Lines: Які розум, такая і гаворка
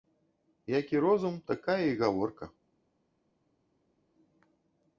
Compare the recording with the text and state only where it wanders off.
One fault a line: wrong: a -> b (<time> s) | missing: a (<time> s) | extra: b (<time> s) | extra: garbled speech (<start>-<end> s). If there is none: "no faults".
no faults